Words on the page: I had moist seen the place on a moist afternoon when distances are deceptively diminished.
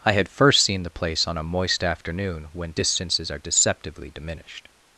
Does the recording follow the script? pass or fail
fail